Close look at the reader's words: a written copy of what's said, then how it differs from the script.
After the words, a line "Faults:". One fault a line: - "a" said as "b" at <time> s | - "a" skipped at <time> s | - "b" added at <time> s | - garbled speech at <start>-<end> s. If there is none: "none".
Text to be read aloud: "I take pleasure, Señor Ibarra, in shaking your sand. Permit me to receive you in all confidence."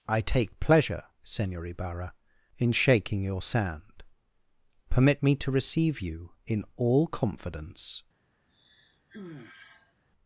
"I take pleasure, Señor Ibarra, in shaking your sand. Permit me to receive you in all confidence."
Faults:
none